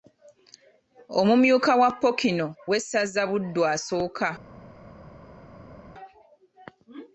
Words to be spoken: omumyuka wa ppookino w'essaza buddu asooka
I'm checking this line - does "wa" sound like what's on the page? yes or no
yes